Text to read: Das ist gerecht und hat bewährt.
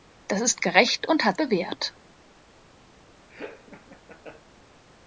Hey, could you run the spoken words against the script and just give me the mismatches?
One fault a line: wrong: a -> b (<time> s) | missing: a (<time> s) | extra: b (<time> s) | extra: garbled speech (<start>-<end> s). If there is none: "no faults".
no faults